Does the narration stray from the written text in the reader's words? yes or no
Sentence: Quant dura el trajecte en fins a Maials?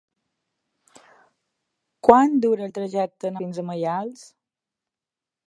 no